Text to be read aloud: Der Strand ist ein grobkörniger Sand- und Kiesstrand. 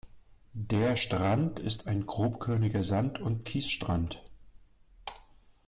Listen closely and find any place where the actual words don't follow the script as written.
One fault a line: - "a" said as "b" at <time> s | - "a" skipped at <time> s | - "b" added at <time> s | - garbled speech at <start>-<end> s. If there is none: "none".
none